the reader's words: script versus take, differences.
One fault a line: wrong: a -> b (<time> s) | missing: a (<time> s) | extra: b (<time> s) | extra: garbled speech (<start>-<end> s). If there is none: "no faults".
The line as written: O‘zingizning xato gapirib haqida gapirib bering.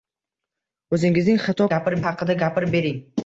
no faults